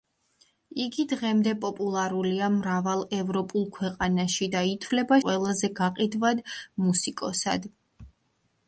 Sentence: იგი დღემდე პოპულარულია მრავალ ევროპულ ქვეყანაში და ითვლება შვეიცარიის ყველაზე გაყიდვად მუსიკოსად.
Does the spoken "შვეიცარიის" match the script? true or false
false